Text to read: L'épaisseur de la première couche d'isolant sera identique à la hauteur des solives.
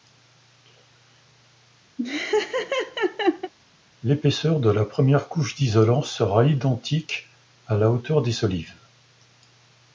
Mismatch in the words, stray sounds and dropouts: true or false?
true